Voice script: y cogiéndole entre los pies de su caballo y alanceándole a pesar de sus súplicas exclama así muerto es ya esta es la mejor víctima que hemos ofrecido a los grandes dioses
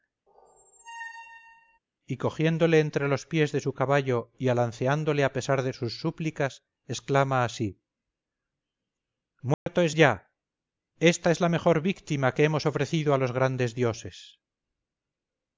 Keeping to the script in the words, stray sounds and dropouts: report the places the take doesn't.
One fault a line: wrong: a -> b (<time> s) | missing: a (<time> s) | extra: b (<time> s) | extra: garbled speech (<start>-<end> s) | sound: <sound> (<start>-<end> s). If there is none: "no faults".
sound: squeak (0.3-1.8 s)
sound: dropout (9.5-9.7 s)